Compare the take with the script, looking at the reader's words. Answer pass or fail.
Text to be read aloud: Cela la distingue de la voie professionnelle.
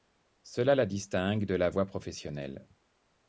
pass